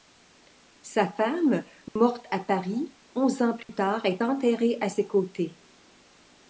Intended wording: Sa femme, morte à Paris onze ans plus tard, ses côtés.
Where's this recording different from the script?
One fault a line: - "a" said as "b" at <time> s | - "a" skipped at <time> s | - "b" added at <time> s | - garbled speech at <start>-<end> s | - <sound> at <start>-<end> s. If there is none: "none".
- dropout at 1.9-2.0 s
- dropout at 3.6-3.7 s
- "est enterrée à" added at 4.0 s